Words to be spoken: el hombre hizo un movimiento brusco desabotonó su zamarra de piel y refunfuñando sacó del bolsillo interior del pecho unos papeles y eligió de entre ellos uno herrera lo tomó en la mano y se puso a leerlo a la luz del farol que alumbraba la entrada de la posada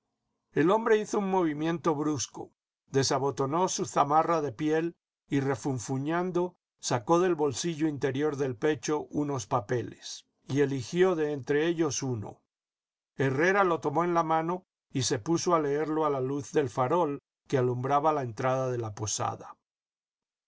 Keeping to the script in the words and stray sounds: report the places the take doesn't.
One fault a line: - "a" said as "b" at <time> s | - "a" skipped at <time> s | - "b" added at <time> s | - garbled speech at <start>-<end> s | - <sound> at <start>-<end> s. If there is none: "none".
none